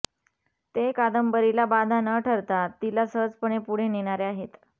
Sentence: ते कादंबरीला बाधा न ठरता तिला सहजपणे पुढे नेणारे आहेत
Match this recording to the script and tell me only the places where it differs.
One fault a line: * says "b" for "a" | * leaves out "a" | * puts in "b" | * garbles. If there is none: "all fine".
all fine